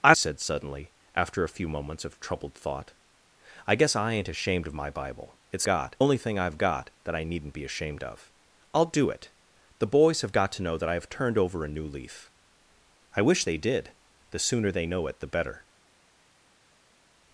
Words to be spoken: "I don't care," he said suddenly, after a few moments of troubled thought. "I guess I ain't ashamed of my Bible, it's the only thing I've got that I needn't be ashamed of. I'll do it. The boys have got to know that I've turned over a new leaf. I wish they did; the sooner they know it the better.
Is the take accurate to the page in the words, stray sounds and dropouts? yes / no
no